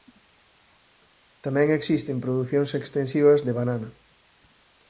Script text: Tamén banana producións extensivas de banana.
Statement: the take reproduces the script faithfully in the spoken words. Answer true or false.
false